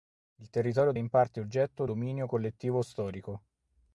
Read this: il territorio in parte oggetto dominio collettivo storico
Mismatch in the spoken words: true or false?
false